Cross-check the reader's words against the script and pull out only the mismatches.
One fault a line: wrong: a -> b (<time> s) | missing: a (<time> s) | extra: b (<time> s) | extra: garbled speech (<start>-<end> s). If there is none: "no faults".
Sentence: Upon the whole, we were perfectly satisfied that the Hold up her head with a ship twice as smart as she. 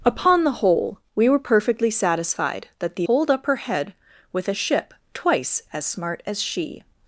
no faults